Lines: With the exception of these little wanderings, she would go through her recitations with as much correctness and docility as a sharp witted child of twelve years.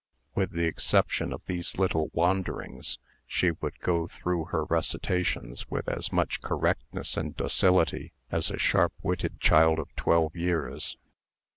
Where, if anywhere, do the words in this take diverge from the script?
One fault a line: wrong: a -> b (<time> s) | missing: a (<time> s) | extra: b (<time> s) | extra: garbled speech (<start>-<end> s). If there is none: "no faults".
no faults